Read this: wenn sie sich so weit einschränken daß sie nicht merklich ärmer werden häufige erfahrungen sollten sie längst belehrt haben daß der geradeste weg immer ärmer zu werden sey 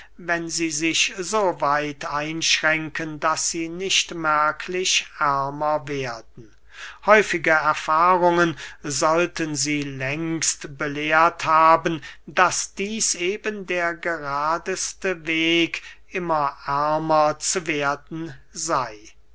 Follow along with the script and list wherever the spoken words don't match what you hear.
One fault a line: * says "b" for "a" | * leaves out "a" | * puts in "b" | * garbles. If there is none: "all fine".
* puts in "dieß eben"